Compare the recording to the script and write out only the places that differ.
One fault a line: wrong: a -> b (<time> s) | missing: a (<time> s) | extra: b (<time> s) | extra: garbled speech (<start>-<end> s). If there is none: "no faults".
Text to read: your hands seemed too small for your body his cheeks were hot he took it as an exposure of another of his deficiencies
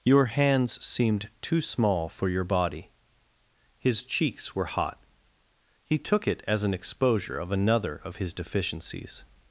no faults